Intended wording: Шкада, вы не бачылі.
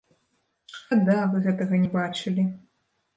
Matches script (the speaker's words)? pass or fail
fail